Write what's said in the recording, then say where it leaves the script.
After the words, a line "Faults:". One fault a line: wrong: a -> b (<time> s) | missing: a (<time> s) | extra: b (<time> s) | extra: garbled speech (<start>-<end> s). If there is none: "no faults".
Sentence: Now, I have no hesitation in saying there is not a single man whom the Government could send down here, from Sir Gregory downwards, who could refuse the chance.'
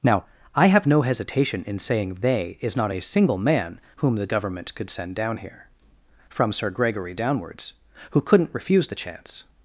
Now, I have no hesitation in saying they is not a single man whom the Government could send down here, from Sir Gregory downwards, who couldn't refuse the chance.'
Faults:
wrong: there -> they (2.2 s)
wrong: could -> couldn't (8.2 s)